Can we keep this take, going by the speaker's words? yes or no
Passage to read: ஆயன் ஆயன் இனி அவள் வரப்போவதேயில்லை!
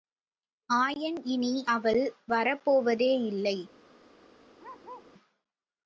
no